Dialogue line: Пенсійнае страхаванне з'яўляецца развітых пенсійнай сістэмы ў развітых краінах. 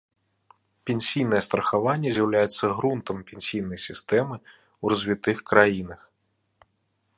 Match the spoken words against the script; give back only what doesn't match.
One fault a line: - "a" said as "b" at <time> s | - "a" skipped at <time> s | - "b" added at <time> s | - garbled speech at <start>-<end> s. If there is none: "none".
- "развітых" said as "грунтам" at 2.8 s